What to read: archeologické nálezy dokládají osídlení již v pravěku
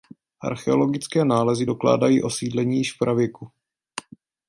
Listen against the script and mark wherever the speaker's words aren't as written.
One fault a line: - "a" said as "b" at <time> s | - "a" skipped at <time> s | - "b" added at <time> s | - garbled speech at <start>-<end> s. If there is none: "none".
none